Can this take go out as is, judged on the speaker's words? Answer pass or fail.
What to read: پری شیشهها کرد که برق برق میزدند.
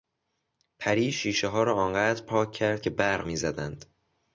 fail